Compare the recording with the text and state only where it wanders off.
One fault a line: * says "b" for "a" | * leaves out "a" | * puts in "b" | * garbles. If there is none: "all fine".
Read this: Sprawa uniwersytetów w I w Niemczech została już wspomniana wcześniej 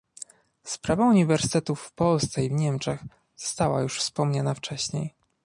* puts in "Polsce"